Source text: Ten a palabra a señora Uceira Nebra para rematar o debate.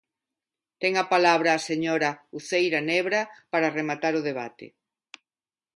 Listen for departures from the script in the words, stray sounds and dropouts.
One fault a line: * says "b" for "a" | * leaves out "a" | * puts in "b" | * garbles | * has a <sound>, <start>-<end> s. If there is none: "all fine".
all fine